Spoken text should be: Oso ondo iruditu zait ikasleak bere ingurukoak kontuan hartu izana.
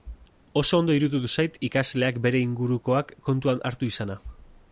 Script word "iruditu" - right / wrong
right